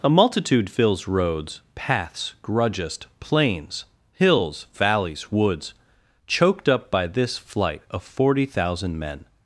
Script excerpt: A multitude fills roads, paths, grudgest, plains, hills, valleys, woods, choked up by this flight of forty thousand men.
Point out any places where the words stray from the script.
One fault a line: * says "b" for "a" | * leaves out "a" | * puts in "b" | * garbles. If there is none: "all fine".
all fine